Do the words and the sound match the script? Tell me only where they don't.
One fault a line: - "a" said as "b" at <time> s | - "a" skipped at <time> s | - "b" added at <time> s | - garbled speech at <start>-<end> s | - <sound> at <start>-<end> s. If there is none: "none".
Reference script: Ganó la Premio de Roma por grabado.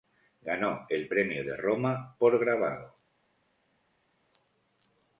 - "la" said as "el" at 0.9 s